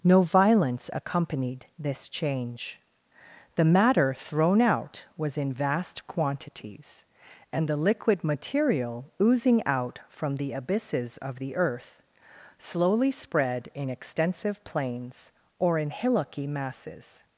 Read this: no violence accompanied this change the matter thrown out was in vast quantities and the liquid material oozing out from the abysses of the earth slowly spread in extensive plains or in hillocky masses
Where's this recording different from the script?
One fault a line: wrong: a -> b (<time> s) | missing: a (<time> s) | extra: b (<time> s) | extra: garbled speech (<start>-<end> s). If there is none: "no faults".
no faults